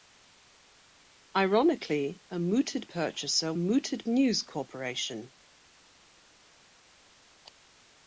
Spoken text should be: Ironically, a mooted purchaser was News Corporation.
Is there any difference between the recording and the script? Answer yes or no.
yes